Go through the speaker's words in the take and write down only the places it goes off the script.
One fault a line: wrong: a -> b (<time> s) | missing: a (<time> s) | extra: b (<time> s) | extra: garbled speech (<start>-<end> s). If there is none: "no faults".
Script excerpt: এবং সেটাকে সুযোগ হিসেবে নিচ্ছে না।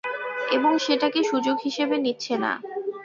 no faults